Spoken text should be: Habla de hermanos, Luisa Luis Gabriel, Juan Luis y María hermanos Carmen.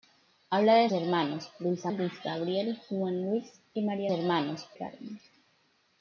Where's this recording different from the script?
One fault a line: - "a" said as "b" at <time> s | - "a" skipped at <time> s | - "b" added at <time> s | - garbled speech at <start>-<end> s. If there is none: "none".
none